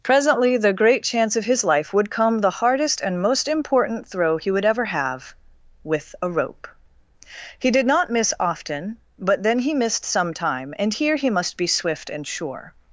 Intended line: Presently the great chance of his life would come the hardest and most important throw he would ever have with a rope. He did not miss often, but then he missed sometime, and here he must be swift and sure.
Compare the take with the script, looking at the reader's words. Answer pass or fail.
pass